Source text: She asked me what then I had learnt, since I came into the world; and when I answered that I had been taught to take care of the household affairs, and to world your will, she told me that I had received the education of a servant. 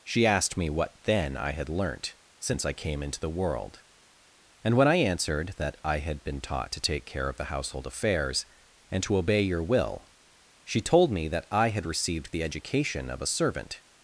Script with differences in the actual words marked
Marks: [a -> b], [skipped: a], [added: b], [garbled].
She asked me what then I had learnt, since I came into the world; and when I answered that I had been taught to take care of the household affairs, and to [world -> obey] your will, she told me that I had received the education of a servant.